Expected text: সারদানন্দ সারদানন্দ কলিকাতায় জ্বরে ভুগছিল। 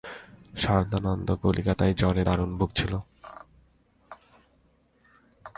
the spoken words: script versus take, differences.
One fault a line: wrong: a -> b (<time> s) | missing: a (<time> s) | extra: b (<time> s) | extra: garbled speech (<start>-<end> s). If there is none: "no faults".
missing: সারদানন্দ (1.3 s)
extra: দারুণ (2.2 s)